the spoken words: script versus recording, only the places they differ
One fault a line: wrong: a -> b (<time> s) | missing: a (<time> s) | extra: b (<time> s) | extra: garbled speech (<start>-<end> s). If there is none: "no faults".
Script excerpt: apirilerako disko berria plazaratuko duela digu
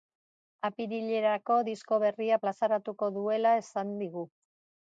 extra: esan (3.7 s)